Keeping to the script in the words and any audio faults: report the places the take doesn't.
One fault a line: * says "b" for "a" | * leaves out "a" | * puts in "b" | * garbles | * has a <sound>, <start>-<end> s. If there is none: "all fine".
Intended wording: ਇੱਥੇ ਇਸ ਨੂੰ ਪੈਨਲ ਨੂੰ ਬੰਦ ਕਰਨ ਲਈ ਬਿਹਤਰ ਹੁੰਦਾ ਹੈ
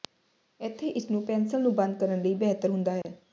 * has a dropout, 3.0-3.0 s